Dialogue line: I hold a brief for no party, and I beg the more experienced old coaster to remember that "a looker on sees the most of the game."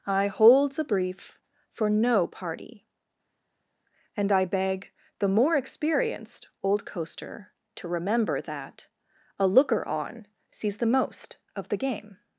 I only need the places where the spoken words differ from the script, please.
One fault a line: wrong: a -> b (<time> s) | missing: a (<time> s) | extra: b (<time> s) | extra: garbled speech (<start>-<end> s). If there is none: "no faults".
wrong: hold -> holds (0.3 s)